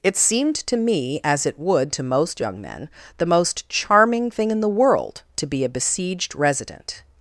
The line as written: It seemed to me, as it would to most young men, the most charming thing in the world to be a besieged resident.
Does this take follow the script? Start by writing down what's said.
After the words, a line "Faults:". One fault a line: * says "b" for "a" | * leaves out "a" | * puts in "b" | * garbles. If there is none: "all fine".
It seemed to me, as it would to most young men, the most charming thing in the world to be a besieged resident.
Faults:
all fine